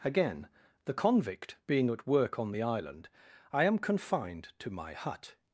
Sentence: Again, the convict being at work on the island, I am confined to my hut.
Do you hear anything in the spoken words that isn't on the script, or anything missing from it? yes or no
no